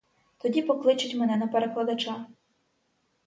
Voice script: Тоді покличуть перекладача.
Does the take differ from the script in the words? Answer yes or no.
yes